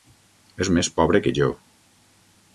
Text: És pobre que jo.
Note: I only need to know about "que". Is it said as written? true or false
true